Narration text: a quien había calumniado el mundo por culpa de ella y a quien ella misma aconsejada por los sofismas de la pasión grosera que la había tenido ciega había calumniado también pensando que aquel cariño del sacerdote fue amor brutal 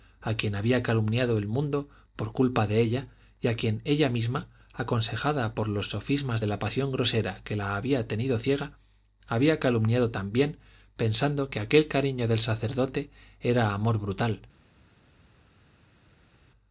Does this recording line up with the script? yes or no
no